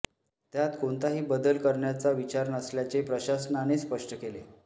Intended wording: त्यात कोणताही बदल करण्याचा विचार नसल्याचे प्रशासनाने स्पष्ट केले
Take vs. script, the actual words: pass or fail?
pass